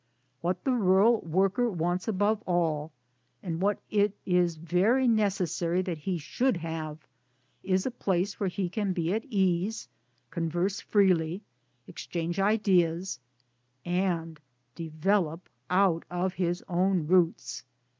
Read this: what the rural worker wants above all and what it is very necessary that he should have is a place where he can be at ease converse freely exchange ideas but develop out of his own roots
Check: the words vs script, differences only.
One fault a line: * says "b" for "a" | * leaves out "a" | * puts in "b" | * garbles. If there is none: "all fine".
* says "and" for "but"